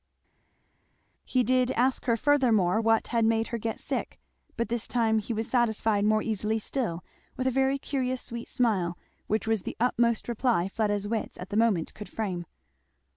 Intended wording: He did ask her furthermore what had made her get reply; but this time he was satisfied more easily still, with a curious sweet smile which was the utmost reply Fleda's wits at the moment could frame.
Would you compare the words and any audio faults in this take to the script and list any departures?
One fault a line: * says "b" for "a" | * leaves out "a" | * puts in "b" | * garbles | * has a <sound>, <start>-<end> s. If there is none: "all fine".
* says "sick" for "reply"
* puts in "very"